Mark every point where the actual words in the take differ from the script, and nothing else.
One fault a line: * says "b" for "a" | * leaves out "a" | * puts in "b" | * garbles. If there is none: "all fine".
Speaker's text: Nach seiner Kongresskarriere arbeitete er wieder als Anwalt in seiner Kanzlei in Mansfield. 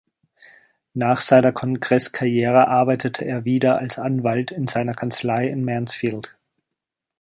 all fine